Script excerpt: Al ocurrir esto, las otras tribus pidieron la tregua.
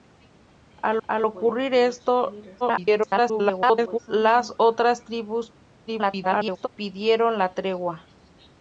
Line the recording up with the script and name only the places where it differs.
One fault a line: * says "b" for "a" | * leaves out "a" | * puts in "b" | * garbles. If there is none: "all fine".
* puts in "al"
* garbles
* garbles